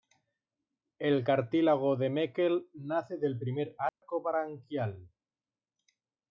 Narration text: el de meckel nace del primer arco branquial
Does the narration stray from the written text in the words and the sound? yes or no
yes